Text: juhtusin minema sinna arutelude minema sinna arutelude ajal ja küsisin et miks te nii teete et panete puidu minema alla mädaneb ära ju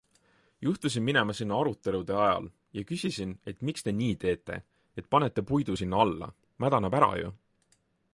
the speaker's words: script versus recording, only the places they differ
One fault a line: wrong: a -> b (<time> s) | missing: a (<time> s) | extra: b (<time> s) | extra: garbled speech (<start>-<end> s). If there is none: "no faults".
missing: minema sinna arutelude (2.1 s)
wrong: minema -> sinna (5.7 s)